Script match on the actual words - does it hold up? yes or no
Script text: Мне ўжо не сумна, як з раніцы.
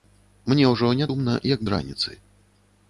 yes